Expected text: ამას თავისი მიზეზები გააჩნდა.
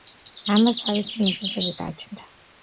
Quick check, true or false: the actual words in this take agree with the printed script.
true